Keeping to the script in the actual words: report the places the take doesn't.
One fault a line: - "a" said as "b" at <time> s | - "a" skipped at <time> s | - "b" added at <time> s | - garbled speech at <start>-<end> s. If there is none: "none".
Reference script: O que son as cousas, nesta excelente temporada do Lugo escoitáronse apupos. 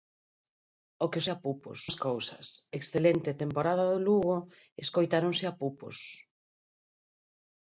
- "son" said as "apupos" at 1.3 s
- "nesta" skipped at 2.5 s